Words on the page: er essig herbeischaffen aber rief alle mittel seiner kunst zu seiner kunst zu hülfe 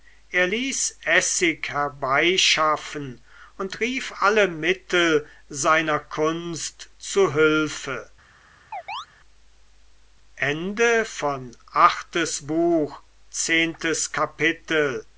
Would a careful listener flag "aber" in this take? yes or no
yes